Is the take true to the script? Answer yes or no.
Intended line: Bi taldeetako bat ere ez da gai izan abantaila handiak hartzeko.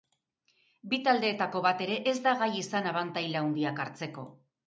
yes